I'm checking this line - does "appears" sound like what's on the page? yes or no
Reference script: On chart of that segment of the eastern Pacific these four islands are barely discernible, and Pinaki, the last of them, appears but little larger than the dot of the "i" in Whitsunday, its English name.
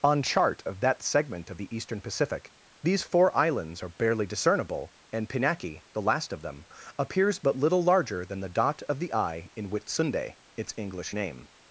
yes